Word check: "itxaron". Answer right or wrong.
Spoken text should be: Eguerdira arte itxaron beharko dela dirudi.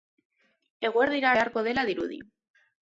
wrong